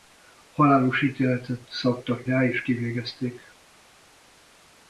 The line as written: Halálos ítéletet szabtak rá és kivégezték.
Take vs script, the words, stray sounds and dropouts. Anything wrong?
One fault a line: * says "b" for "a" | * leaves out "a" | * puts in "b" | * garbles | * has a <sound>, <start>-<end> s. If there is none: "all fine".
all fine